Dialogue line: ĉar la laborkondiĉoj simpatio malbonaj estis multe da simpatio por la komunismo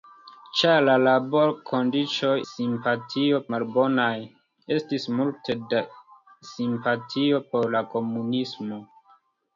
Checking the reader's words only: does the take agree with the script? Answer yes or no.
yes